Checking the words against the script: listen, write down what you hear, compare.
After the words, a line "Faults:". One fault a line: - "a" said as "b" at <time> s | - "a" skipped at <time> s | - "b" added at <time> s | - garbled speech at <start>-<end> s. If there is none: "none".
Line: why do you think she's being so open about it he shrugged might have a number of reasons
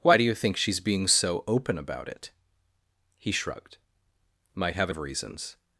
why do you think she's being so open about it he shrugged might have a of reasons
Faults:
- "number" skipped at 4.9 s